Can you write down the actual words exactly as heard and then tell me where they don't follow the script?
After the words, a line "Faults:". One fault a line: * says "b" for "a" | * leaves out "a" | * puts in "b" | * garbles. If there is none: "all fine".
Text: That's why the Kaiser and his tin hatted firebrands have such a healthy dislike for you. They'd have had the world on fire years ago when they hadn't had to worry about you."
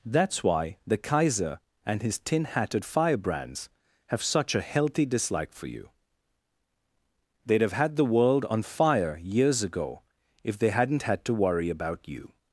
That's why the Kaiser and his tin hatted firebrands have such a healthy dislike for you. They'd have had the world on fire years ago if they hadn't had to worry about you."
Faults:
* says "if" for "when"